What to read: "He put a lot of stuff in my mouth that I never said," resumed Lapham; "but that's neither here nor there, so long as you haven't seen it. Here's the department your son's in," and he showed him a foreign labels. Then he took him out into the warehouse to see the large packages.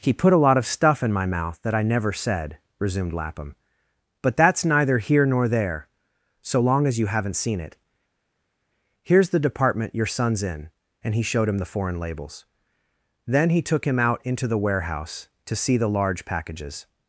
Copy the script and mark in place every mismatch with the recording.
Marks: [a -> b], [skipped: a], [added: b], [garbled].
"He put a lot of stuff in my mouth that I never said," resumed Lapham; "but that's neither here nor there, so long as you haven't seen it. Here's the department your son's in," and he showed him [a -> the] foreign labels. Then he took him out into the warehouse to see the large packages.